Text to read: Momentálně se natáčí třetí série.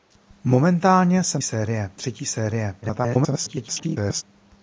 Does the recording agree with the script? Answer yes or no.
no